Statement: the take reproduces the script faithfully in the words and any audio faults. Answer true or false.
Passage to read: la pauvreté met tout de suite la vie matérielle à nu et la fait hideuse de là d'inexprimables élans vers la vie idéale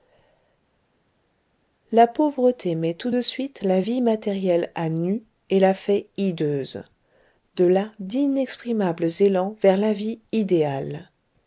true